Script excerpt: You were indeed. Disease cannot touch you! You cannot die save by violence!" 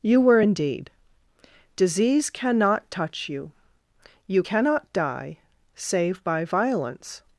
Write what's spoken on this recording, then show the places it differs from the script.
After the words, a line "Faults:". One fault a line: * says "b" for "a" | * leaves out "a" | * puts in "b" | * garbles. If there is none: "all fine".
You were indeed. Disease cannot touch you! You cannot die save by violence!"
Faults:
all fine